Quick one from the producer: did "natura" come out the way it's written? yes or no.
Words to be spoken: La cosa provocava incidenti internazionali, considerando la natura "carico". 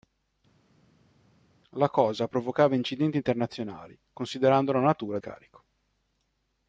yes